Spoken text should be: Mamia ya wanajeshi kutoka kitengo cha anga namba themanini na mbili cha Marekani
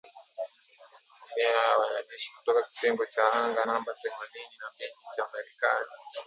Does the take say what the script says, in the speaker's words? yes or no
yes